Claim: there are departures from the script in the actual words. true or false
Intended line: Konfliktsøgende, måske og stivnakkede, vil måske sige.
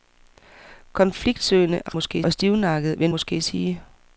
false